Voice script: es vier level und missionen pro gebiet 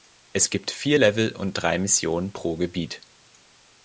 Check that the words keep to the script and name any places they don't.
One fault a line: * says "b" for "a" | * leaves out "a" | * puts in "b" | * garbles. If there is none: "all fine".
* puts in "gibt"
* puts in "drei"